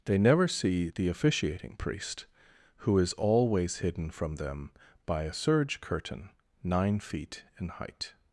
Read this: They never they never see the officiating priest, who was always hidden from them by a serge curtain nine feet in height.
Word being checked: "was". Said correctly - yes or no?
no